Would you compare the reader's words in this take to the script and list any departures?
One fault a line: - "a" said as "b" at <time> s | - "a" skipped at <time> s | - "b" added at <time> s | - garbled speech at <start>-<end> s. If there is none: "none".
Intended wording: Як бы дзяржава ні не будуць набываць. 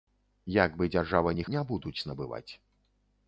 none